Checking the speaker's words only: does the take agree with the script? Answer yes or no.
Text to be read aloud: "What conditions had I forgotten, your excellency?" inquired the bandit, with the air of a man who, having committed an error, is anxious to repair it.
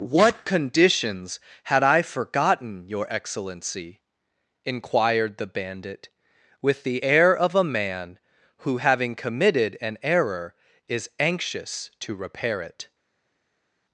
yes